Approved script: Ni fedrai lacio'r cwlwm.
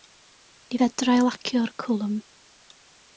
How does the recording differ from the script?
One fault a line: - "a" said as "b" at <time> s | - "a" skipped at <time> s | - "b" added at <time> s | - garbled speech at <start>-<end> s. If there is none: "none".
none